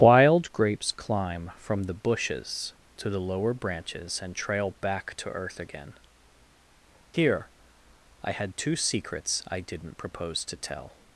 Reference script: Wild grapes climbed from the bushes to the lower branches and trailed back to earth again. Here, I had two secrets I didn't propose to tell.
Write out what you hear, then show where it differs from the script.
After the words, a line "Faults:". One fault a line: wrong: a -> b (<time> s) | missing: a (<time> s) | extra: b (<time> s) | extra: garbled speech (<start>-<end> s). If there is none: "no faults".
Wild grapes climb from the bushes to the lower branches and trail back to earth again. Here, I had two secrets I didn't propose to tell.
Faults:
wrong: climbed -> climb (0.9 s)
wrong: trailed -> trail (4.3 s)